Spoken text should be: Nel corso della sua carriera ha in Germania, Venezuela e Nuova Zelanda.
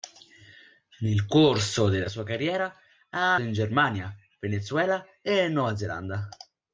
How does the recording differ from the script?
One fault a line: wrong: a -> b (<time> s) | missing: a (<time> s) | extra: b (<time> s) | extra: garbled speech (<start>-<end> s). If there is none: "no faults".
no faults